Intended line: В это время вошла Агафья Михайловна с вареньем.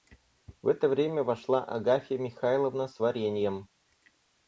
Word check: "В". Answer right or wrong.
right